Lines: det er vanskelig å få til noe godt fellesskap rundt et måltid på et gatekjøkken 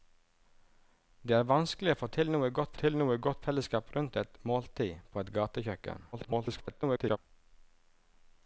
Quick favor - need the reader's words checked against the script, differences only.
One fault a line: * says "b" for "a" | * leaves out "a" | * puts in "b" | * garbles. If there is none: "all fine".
* puts in "til noe godt"
* garbles